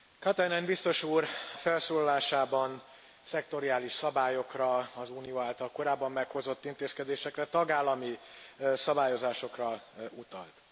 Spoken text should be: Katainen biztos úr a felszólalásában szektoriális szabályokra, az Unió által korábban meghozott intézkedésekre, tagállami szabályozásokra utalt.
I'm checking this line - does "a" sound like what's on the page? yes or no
no